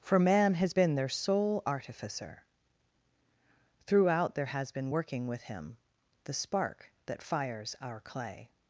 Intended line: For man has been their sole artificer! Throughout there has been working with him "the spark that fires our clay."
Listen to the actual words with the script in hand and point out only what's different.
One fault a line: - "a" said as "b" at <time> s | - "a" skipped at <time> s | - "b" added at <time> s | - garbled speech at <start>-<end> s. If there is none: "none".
none